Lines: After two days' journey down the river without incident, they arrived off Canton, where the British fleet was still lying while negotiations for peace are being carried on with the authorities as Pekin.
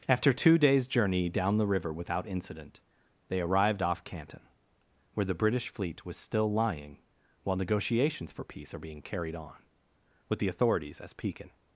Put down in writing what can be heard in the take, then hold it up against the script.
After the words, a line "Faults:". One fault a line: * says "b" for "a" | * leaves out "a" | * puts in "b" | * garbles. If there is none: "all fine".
After two days' journey down the river without incident, they arrived off Canton, where the British fleet was still lying while negotiations for peace are being carried on with the authorities as Pekin.
Faults:
all fine